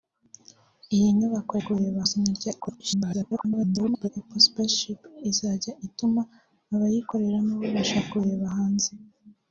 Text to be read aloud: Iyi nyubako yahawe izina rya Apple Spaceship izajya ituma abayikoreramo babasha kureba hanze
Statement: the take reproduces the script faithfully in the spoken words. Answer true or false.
false